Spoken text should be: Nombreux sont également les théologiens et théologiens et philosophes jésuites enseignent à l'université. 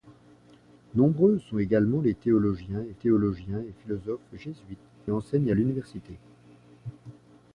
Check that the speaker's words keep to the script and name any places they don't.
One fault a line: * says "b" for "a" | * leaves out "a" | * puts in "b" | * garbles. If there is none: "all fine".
all fine